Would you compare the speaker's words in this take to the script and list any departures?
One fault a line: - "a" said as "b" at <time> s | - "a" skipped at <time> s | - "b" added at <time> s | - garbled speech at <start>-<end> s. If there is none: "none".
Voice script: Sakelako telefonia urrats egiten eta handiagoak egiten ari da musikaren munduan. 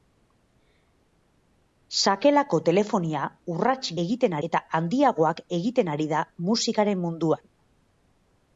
none